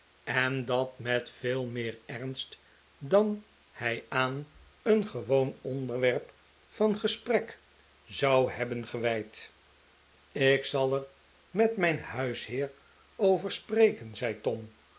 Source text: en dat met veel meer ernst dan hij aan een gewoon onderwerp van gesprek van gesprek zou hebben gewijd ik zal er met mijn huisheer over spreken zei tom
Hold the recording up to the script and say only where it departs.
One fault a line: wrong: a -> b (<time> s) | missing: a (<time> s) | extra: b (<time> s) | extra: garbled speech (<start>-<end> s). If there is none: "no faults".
missing: van gesprek (7.6 s)